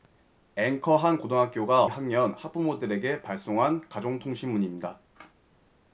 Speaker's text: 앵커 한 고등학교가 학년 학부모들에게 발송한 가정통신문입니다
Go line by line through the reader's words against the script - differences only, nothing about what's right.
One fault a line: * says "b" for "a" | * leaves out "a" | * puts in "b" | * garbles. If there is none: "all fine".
all fine